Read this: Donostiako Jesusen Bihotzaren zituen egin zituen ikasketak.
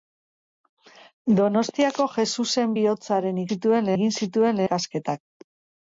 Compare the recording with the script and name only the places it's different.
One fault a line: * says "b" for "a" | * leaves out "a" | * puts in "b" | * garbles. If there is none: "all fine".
all fine